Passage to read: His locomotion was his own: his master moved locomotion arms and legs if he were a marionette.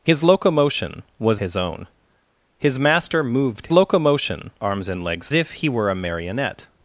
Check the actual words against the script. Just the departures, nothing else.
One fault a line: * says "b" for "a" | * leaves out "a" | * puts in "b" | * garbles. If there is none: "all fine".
all fine